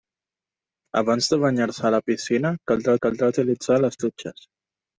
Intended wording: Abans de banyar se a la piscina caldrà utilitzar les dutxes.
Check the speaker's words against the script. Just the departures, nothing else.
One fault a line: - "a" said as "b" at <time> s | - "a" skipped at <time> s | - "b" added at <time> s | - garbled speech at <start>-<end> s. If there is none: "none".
- "caldrà" added at 3.1 s